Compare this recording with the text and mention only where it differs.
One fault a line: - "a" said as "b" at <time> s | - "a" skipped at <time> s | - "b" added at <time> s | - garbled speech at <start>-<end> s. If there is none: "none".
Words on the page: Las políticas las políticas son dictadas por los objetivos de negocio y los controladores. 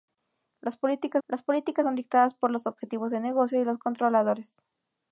none